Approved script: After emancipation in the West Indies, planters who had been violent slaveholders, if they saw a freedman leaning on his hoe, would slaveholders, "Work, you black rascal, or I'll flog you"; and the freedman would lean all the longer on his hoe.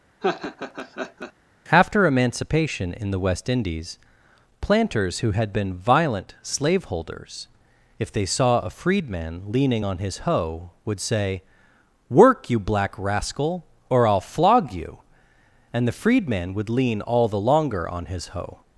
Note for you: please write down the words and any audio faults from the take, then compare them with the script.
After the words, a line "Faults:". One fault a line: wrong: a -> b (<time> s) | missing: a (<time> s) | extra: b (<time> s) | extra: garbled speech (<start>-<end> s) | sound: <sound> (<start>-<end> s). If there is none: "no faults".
After emancipation in the West Indies, planters who had been violent slaveholders, if they saw a freedman leaning on his hoe, would say, "Work, you black rascal, or I'll flog you"; and the freedman would lean all the longer on his hoe.
Faults:
sound: laugh (0.2-1.3 s)
wrong: slaveholders -> say (11.0 s)